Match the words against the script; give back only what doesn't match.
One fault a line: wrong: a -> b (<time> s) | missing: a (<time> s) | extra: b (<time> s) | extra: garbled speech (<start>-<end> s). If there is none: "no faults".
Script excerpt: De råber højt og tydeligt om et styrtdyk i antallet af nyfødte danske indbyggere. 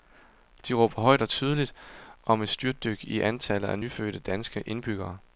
no faults